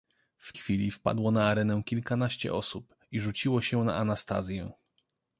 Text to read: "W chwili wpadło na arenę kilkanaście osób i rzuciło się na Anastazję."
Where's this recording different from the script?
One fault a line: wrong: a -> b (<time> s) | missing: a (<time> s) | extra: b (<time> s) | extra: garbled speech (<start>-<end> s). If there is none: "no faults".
no faults